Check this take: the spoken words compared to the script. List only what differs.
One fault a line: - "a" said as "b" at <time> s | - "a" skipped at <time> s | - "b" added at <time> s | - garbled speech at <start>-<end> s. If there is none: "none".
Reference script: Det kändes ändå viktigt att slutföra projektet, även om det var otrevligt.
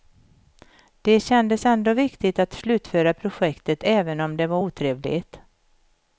none